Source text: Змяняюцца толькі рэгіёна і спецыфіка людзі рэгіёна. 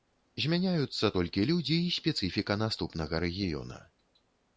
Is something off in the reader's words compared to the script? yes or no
yes